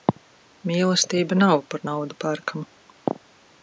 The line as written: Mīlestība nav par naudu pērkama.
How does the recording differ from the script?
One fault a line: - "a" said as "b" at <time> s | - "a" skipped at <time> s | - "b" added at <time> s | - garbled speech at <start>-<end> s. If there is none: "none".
none